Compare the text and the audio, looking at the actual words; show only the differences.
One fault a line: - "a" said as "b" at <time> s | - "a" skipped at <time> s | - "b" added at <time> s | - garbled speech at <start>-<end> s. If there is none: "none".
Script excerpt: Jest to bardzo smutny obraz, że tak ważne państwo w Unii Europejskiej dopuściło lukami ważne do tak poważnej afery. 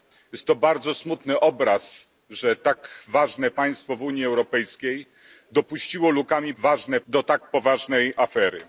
none